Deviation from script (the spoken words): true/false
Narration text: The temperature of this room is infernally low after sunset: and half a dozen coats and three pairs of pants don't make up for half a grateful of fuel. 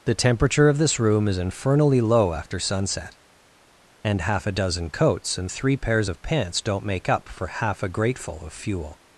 false